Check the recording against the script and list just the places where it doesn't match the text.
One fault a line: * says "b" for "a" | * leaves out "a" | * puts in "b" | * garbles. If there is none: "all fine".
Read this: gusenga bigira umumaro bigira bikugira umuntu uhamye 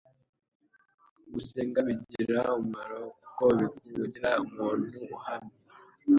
* says "kuko" for "bigira"